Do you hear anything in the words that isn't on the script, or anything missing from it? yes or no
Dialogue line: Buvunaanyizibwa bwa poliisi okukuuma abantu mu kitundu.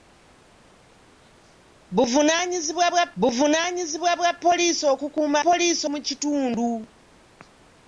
yes